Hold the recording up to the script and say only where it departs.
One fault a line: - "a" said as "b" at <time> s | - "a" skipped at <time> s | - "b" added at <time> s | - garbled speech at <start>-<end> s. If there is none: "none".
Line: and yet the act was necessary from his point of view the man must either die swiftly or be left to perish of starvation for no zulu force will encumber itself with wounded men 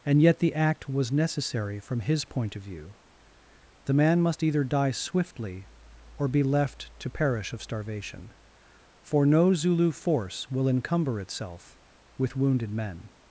none